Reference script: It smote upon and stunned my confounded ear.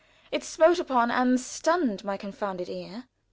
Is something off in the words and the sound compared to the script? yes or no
no